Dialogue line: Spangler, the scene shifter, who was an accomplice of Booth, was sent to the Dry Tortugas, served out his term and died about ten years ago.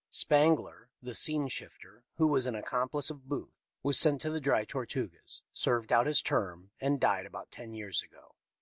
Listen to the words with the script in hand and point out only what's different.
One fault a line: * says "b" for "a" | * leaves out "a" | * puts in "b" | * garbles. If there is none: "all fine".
all fine